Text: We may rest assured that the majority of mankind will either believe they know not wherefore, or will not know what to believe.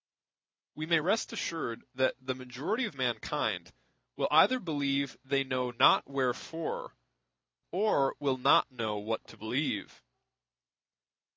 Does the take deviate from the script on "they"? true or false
false